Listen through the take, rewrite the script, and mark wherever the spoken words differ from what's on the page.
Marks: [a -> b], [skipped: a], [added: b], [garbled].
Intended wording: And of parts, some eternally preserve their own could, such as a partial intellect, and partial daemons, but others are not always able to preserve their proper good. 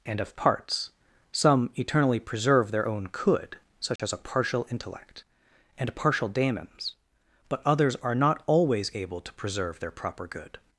And of parts, some eternally preserve their own could, such as a partial intellect, and partial daemons, but others are not always able to preserve their proper good.